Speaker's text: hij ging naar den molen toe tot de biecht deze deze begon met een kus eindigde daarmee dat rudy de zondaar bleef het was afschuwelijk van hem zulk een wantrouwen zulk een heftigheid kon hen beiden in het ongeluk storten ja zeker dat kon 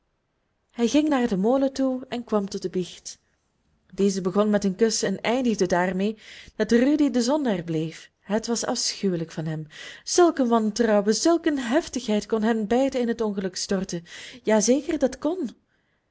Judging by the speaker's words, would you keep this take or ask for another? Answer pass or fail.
fail